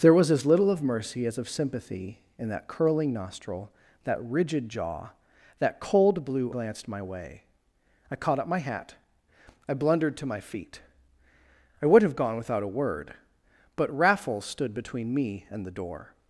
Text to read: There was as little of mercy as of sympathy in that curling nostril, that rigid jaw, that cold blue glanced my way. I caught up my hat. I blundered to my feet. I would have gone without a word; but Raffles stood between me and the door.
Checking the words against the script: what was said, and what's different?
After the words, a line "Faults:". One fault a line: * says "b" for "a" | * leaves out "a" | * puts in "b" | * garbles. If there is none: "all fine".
There was as little of mercy as of sympathy in that curling nostril, that rigid jaw, that cold blue glanced my way. I caught up my hat. I blundered to my feet. I would have gone without a word; but Raffles stood between me and the door.
Faults:
all fine